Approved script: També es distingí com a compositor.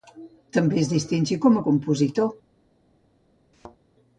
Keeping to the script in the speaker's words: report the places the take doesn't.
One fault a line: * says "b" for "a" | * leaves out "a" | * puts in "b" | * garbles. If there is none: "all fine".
all fine